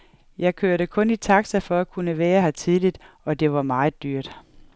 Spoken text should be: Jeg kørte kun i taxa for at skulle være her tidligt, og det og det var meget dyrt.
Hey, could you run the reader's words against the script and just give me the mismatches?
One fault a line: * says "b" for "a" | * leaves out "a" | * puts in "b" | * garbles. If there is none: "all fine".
* says "kunne" for "skulle"
* leaves out "og det"